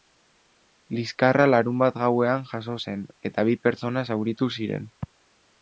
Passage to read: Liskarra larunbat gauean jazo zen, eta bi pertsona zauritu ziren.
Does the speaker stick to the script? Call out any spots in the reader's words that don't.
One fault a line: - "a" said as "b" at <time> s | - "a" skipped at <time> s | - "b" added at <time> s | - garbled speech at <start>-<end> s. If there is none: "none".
none